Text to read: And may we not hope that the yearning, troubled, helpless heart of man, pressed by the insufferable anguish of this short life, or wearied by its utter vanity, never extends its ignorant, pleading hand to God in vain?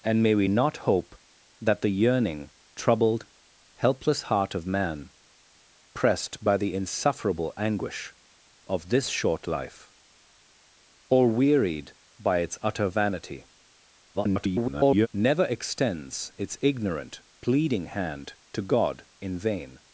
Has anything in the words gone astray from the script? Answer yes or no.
yes